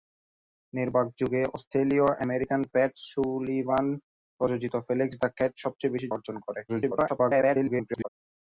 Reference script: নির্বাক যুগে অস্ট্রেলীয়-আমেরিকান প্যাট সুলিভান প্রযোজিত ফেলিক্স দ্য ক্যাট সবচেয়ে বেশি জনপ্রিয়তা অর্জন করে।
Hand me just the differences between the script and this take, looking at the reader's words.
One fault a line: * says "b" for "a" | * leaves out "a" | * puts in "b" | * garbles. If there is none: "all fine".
* leaves out "জনপ্রিয়তা"
* garbles